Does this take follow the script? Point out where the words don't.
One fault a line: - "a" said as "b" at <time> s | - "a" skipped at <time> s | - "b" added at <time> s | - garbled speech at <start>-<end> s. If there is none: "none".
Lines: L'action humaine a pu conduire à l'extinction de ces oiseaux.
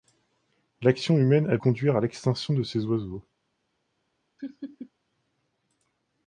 - "pu" skipped at 1.6 s